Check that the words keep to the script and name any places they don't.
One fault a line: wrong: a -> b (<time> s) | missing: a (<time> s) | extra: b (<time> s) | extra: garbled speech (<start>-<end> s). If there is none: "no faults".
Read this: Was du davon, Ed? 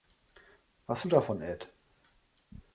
no faults